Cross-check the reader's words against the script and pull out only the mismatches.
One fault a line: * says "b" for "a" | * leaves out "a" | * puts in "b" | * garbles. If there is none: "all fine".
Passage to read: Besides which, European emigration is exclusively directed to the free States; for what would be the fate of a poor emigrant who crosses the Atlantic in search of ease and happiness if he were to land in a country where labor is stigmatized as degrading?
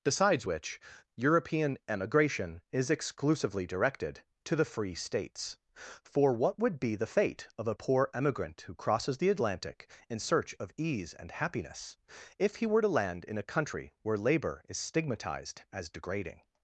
all fine